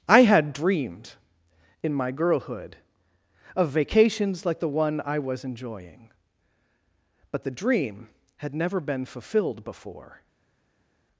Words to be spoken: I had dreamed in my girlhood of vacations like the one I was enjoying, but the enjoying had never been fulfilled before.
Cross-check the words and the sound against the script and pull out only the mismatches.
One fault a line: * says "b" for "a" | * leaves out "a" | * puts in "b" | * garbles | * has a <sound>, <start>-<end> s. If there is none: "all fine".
* says "dream" for "enjoying"